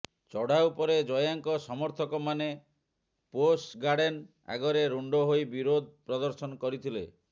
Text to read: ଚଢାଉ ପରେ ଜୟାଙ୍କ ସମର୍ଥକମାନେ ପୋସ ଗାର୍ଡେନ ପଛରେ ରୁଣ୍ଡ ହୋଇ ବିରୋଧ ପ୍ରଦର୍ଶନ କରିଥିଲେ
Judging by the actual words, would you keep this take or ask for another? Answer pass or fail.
fail